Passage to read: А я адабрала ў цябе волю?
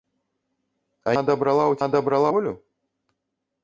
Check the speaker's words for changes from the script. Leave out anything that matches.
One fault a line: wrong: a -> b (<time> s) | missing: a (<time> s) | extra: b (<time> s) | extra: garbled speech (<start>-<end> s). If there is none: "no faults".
missing: я (1.1 s)
wrong: цябе -> адабрала (1.9 s)